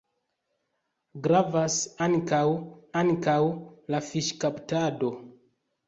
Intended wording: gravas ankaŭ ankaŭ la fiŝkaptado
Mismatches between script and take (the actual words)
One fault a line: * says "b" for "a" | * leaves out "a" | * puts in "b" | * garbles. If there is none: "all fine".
all fine